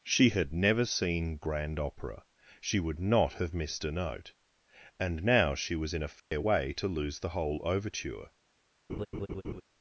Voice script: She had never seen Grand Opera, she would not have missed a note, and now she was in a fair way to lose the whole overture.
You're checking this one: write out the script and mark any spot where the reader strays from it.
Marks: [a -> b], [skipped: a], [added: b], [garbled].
She had never seen Grand Opera, she would not have missed a note, and now she was in a fair way to lose the whole overture.